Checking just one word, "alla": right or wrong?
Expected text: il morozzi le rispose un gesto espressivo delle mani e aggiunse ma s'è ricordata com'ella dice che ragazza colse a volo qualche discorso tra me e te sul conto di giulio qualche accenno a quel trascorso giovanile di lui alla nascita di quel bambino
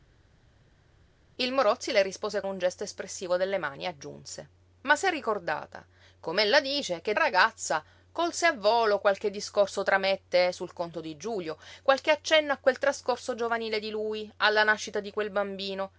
right